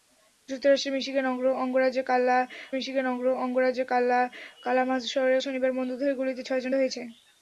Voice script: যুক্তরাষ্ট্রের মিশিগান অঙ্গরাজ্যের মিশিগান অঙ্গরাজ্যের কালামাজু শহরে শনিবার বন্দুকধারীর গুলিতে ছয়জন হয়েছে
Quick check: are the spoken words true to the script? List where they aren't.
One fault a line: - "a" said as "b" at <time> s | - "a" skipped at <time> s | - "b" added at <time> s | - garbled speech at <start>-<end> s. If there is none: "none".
none